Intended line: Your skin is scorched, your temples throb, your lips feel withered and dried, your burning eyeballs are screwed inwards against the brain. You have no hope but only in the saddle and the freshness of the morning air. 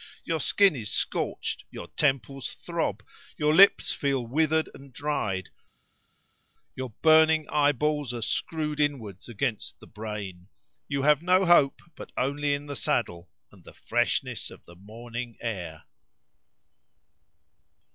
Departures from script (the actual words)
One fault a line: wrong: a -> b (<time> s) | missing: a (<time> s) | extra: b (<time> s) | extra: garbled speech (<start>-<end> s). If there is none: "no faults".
no faults